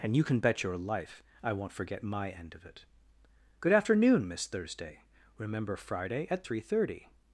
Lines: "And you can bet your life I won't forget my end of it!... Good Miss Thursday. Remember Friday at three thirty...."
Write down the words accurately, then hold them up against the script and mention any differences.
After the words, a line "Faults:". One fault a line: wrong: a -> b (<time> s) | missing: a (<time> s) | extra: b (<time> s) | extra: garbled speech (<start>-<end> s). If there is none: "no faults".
"And you can bet your life I won't forget my end of it!... Good afternoon, Miss Thursday. Remember Friday at three thirty...."
Faults:
extra: afternoon (3.7 s)